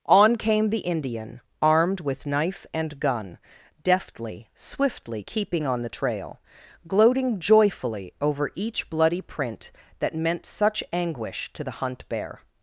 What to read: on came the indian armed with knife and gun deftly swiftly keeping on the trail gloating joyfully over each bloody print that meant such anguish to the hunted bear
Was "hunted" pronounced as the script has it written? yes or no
no